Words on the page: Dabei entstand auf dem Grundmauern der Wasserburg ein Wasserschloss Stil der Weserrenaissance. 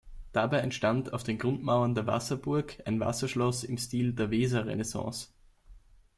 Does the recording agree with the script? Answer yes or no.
no